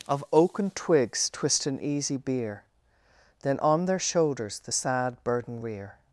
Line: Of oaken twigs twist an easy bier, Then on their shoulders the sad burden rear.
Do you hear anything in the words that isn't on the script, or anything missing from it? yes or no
no